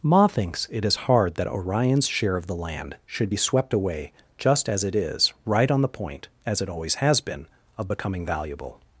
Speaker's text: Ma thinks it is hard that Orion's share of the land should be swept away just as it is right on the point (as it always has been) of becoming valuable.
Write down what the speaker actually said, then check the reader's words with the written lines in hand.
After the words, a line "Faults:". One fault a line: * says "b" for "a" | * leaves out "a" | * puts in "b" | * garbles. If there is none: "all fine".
Ma thinks it is hard that Orion's share of the land should be swept away just as it is right on the point (as it always has been) of becoming valuable.
Faults:
all fine